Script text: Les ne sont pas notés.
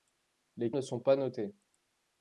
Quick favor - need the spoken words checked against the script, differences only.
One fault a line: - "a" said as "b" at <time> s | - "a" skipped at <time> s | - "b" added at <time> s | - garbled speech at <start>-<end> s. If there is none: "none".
none